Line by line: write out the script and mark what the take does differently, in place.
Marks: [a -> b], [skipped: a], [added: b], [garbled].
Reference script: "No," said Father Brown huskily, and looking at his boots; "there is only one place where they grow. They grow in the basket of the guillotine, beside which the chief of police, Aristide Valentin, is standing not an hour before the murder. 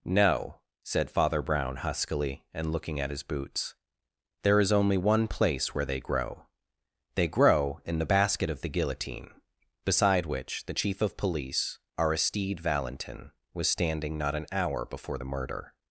"No," said Father Brown huskily, and looking at his boots; "there is only one place where they grow. They grow in the basket of the guillotine, beside which the chief of police, Aristide Valentin, [is -> was] standing not an hour before the murder.